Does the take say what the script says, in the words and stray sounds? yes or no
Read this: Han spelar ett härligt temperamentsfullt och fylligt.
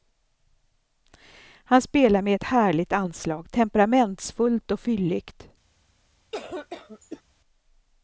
no